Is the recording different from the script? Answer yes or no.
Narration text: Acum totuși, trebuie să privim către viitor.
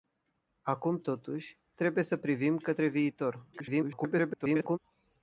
yes